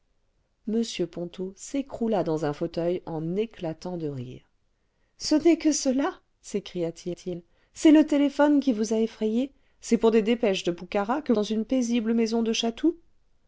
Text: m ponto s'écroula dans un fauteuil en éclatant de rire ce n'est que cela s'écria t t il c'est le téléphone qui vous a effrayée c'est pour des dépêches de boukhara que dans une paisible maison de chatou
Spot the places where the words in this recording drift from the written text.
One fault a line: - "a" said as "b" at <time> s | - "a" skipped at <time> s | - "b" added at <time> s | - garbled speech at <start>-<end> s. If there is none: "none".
none